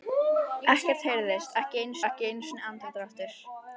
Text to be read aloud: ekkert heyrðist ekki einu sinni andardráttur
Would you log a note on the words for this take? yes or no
yes